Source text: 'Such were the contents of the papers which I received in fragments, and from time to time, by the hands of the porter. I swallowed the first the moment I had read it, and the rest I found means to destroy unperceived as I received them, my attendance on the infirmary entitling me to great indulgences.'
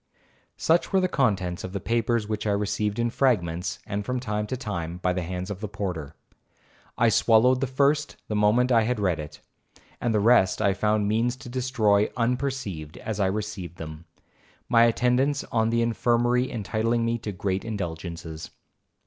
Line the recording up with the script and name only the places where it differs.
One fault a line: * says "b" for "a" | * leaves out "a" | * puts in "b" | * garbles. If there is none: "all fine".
all fine